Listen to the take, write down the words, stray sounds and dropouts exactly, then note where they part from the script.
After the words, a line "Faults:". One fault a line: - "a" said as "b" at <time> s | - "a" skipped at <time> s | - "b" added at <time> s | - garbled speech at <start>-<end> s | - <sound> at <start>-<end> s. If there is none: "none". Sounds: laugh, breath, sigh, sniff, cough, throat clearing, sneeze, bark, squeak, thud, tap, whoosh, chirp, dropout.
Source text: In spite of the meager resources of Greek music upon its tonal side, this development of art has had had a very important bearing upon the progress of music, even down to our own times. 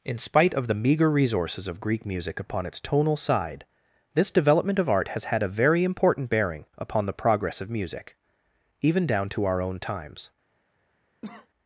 In spite of the meager resources of Greek music upon its tonal side, this development of art has had a very important bearing upon the progress of music, even down to our own times.
Faults:
- "had" skipped at 5.4 s
- cough at 11.2-11.5 s